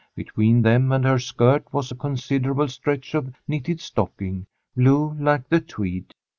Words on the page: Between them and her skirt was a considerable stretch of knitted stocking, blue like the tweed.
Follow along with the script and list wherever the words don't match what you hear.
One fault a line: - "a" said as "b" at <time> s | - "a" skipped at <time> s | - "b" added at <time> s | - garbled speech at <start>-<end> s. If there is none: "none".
none